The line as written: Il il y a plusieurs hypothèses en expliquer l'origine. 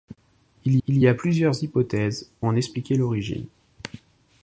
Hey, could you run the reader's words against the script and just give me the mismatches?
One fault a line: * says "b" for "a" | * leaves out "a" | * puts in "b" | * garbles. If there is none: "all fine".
all fine